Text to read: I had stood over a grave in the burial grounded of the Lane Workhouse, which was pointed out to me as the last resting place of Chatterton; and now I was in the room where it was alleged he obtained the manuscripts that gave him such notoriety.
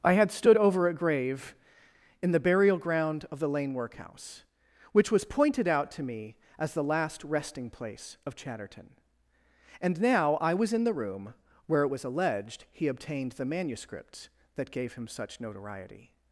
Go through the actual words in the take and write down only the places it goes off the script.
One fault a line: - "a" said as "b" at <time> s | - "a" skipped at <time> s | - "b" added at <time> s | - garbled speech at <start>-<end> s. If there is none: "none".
- "grounded" said as "ground" at 2.8 s